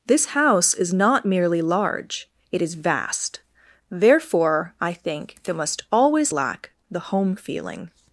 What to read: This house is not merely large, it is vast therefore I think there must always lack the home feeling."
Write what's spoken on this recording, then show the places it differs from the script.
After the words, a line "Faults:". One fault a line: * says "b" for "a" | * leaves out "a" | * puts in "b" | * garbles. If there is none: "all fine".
This house is not merely large, it is vast therefore I think there must always lack the home feeling."
Faults:
all fine